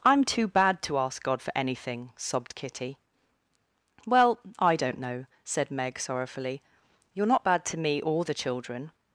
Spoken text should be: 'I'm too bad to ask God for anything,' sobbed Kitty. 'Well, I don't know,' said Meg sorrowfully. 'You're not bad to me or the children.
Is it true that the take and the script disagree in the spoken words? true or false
false